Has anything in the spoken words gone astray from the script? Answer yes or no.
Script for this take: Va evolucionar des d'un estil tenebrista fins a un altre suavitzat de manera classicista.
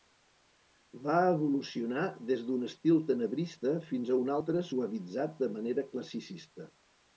no